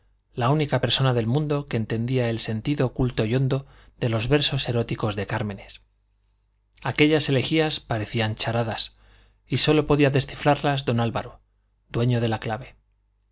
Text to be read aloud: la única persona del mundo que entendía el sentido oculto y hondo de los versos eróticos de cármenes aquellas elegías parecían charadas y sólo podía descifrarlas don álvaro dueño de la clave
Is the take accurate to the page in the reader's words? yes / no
yes